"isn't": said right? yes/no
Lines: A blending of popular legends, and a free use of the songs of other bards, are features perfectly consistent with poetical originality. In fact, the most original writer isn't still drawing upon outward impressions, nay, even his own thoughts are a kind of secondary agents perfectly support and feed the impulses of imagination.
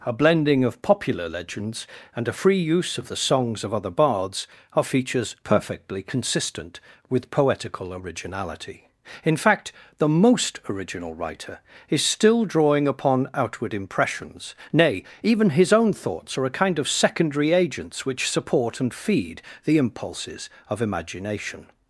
no